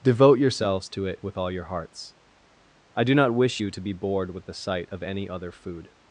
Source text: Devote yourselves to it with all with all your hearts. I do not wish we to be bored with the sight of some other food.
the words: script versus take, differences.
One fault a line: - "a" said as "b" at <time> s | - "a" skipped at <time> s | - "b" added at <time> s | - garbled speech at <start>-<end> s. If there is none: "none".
- "with all" skipped at 1.5 s
- "we" said as "you" at 3.6 s
- "some" said as "any" at 5.0 s